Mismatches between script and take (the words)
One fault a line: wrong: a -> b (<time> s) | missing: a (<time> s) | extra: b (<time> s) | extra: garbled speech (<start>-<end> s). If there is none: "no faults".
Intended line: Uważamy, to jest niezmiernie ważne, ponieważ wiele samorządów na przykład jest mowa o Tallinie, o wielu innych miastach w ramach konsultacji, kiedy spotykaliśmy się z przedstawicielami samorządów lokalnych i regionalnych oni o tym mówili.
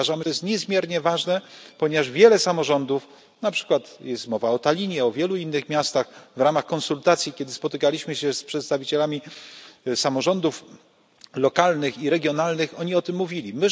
no faults